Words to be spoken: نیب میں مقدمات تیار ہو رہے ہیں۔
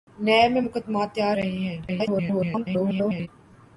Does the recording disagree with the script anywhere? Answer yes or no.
yes